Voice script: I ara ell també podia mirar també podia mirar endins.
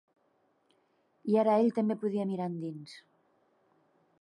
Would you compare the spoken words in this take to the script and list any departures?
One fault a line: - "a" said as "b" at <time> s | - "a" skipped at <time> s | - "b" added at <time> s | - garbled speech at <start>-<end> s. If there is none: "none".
- "també podia mirar" skipped at 2.5 s